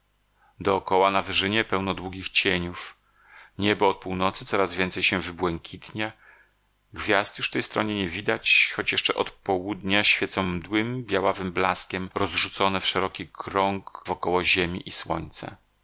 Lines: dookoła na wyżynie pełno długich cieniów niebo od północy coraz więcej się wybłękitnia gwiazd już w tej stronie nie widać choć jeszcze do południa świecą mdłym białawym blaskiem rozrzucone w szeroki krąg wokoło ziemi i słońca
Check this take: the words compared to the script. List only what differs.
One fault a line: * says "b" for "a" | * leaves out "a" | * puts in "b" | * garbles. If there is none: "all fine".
* says "od" for "do"